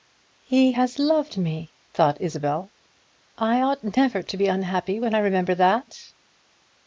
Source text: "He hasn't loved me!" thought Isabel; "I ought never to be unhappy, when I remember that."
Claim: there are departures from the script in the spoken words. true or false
true